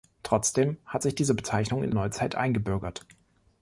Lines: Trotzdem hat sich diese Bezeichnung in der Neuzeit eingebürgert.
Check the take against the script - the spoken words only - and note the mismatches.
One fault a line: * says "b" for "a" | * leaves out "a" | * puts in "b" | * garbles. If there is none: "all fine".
* leaves out "der"